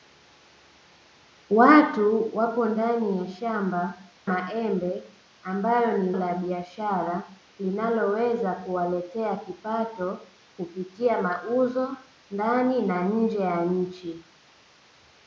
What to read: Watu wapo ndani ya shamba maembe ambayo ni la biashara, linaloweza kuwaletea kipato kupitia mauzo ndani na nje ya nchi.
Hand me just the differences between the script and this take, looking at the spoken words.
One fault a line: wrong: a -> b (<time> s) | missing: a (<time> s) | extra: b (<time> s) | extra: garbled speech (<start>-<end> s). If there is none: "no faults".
no faults